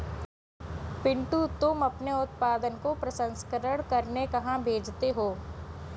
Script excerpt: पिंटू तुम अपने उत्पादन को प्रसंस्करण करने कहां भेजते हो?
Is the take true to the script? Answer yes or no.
yes